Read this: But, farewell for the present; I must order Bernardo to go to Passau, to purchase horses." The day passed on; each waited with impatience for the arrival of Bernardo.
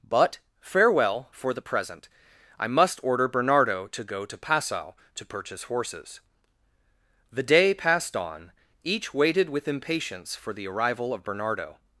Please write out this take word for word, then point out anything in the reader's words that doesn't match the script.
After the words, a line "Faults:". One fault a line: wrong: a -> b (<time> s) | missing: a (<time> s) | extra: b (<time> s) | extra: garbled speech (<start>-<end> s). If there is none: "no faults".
But, farewell for the present; I must order Bernardo to go to Passau, to purchase horses." The day passed on; each waited with impatience for the arrival of Bernardo.
Faults:
no faults